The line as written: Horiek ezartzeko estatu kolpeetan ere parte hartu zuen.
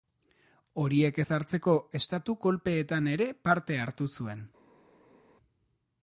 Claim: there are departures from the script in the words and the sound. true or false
false